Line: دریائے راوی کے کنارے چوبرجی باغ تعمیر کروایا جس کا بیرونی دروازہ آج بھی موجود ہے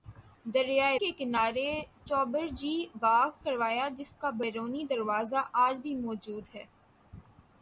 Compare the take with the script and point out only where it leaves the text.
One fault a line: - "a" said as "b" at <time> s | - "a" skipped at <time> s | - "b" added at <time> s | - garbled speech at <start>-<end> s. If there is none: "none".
- "راوی" skipped at 1.0 s
- "تعمیر" skipped at 3.3 s